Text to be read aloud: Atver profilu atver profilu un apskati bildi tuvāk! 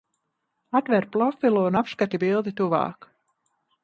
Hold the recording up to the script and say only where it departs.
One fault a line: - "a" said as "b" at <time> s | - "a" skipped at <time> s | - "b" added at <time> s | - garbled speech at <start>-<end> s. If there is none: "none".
- "atver profilu" skipped at 1.6 s